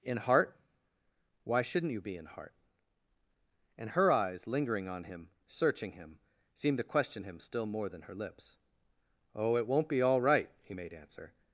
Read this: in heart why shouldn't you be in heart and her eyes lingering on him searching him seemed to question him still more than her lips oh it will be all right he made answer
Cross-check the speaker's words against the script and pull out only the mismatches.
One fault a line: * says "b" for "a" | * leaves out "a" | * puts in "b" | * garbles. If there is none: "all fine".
* says "won't" for "will"